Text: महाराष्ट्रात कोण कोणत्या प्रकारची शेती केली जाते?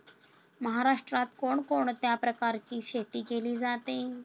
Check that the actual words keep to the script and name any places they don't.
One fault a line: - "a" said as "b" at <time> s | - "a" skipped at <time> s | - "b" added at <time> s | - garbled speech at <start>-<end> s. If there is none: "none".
none